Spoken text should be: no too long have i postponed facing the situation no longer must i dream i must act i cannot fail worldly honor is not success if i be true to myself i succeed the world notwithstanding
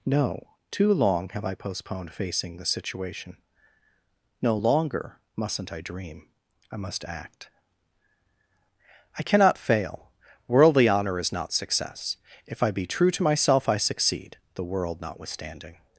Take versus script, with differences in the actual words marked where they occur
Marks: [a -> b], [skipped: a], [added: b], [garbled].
no too long have i postponed facing the situation no longer [must -> mustn't] i dream i must act i cannot fail worldly honor is not success if i be true to myself i succeed the world notwithstanding